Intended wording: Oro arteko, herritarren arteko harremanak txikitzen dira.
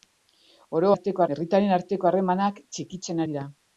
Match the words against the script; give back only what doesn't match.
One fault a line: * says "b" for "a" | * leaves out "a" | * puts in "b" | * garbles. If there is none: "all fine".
all fine